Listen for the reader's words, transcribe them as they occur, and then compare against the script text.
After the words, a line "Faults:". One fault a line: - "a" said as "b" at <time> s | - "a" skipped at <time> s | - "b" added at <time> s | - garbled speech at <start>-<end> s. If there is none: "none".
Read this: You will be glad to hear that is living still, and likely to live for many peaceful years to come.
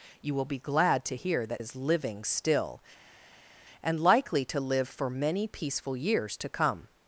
You will be glad to hear that is living still, and likely to live for many peaceful years to come.
Faults:
none